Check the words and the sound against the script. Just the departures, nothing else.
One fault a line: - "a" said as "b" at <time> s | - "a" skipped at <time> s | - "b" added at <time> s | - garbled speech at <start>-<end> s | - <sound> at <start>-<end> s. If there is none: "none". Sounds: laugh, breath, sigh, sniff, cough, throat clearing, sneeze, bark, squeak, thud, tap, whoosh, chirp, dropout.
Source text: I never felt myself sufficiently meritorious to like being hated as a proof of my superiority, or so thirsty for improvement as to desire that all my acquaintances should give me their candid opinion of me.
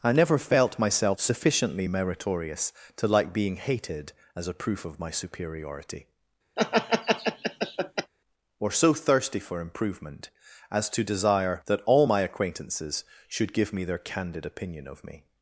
- laugh at 6.6-8.1 s